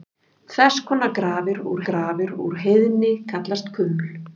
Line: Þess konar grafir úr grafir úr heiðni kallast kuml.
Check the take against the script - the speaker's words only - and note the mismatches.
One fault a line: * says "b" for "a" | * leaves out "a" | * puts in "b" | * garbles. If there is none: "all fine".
all fine